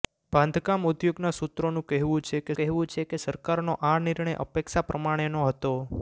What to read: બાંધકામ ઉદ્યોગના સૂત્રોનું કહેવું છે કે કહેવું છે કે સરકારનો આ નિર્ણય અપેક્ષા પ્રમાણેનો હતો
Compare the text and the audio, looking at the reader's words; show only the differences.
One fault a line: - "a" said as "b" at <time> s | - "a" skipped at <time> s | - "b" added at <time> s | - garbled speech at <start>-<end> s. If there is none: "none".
none